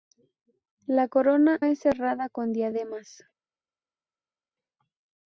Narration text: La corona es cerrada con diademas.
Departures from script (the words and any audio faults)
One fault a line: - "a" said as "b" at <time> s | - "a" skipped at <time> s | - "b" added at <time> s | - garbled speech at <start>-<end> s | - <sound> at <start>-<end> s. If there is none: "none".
none